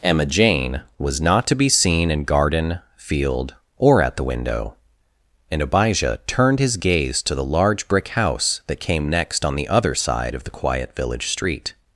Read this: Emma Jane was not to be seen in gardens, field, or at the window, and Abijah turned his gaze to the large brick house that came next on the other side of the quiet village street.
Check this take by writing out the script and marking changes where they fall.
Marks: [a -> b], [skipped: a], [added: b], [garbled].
Emma Jane was not to be seen in [gardens, -> garden] field, or at the window, and Abijah turned his gaze to the large brick house that came next on the other side of the quiet village street.